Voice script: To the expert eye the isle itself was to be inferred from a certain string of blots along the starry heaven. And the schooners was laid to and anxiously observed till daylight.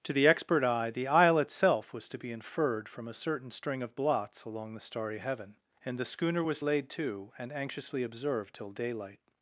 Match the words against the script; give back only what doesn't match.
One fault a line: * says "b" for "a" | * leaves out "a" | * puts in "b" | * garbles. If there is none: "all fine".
* says "schooner" for "schooners"